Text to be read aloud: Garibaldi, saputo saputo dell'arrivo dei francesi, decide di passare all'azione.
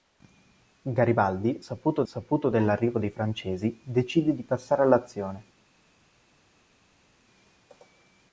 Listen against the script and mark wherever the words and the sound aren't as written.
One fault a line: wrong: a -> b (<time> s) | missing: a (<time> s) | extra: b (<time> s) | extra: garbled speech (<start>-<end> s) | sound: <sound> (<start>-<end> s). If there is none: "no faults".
no faults